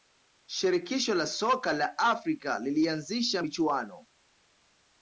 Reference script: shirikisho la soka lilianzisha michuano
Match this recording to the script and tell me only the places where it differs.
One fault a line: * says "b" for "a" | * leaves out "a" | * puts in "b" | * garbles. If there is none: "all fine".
* puts in "la afrika"